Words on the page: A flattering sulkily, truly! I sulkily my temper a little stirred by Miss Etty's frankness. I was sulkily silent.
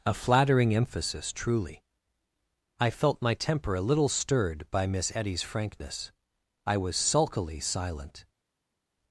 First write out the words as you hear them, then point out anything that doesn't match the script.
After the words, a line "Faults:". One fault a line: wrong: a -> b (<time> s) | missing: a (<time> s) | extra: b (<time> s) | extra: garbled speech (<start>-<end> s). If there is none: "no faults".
A flattering emphasis, truly! I felt my temper a little stirred by Miss Etty's frankness. I was sulkily silent.
Faults:
wrong: sulkily -> emphasis (0.7 s)
wrong: sulkily -> felt (2.9 s)